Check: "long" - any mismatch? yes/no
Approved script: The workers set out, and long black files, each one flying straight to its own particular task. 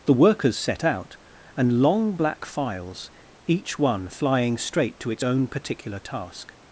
no